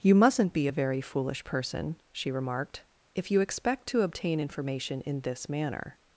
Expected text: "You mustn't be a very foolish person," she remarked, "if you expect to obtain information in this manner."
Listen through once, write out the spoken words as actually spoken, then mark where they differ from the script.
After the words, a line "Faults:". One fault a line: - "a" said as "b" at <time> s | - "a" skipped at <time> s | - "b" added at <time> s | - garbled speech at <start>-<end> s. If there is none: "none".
"You mustn't be a very foolish person," she remarked, "if you expect to obtain information in this manner."
Faults:
none